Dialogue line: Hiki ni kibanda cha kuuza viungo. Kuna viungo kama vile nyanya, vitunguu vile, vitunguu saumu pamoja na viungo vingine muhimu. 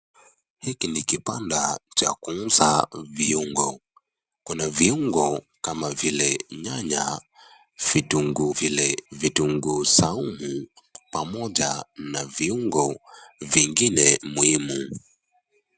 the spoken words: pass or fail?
pass